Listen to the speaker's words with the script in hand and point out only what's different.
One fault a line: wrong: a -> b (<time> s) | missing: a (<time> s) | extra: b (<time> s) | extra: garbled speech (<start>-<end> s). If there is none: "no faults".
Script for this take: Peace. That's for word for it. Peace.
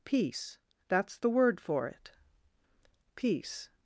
wrong: for -> the (1.2 s)